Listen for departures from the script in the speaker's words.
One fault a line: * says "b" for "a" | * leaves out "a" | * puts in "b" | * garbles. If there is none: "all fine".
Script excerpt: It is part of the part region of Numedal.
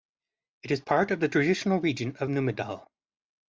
* says "traditional" for "part"